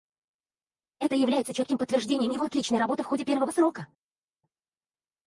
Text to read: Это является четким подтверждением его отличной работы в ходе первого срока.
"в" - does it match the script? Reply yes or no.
yes